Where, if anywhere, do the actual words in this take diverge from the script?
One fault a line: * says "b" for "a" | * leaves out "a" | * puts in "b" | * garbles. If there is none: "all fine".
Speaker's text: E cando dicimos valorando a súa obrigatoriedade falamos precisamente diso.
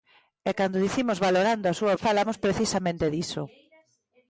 * leaves out "obrigatoriedade"